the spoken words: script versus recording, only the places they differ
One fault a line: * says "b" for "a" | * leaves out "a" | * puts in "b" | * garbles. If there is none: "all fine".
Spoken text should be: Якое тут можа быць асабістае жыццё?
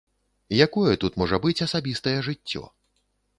all fine